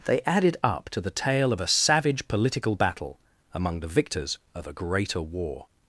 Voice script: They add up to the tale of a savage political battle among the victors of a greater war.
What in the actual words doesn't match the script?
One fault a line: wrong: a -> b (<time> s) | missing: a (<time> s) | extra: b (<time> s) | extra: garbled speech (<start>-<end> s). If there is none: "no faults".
wrong: add -> added (0.2 s)